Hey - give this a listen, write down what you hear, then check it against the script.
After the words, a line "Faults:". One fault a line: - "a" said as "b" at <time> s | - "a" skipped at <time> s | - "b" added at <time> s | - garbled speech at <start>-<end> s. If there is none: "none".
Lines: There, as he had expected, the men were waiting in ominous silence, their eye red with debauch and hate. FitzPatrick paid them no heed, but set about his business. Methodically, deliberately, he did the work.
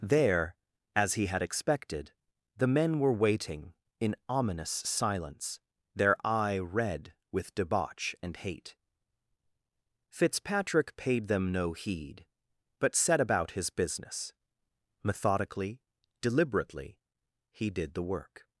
There, as he had expected, the men were waiting in ominous silence, their eye red with debauch and hate. FitzPatrick paid them no heed, but set about his business. Methodically, deliberately, he did the work.
Faults:
none